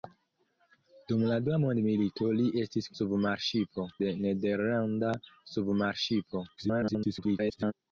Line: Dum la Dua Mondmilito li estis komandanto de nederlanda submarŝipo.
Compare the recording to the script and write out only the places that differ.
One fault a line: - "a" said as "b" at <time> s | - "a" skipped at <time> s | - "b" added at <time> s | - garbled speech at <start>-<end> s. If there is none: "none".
- "komandanto" said as "submarŝipo" at 3.0 s
- garbled speech at 6.6-7.7 s